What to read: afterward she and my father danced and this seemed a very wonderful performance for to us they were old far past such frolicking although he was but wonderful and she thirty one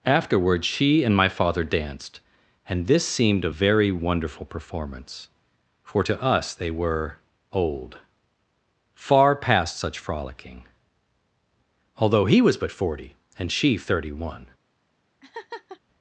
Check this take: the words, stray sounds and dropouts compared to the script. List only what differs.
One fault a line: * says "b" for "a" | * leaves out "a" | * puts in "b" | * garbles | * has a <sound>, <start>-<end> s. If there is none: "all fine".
* says "forty" for "wonderful"
* has a laugh, 15.2-15.8 s